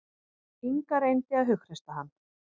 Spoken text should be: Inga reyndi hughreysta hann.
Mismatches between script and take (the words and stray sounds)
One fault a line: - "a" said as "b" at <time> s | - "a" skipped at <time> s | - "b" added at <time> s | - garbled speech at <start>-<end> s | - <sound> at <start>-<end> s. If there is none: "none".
- "að" added at 1.4 s